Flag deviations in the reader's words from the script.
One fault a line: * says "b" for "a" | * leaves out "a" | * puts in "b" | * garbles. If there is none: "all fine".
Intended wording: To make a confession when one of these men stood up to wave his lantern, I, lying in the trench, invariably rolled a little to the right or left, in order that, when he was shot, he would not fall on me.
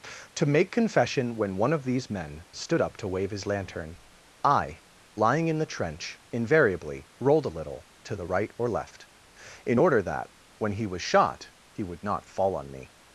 * leaves out "a"